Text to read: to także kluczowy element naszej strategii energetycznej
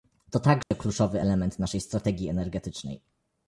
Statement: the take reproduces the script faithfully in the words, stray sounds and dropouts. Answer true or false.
false